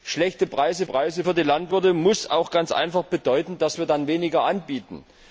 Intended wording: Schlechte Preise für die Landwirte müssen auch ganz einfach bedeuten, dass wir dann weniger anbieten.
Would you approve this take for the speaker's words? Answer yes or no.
no